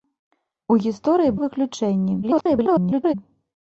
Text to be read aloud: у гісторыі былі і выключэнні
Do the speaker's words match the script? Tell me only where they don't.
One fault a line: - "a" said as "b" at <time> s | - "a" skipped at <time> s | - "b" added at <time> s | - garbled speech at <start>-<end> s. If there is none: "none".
- "былі" skipped at 1.4 s
- garbled speech at 2.2-3.1 s